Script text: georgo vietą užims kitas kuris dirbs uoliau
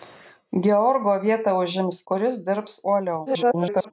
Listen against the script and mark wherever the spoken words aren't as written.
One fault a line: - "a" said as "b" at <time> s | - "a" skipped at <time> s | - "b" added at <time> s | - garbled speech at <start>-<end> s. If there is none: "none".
- "kitas" skipped at 2.0 s
- garbled speech at 3.3-3.9 s